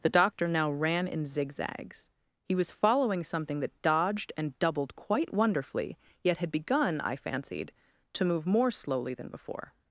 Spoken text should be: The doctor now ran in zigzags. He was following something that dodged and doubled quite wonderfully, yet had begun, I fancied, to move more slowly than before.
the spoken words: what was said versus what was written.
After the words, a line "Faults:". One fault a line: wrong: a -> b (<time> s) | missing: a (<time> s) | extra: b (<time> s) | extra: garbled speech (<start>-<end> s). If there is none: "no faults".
The doctor now ran in zigzags. He was following something that dodged and doubled quite wonderfully, yet had begun, I fancied, to move more slowly than before.
Faults:
no faults